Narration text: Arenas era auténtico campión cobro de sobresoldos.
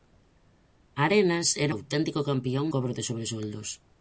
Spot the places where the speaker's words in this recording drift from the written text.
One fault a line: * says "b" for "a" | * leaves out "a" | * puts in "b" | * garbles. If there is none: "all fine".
all fine